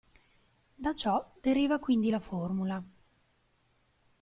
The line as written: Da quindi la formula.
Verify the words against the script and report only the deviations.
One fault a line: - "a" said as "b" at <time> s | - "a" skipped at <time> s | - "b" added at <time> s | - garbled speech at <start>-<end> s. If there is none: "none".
- "ciò deriva" added at 0.9 s